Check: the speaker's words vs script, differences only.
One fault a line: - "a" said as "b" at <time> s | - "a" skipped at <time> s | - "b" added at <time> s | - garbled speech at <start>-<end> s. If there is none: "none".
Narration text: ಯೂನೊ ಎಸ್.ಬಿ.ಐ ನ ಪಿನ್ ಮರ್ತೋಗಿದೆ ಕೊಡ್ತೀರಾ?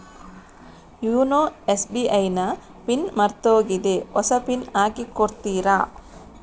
- "ಹೊಸ ಪಿನ್ ಹಾಕಿ" added at 4.1 s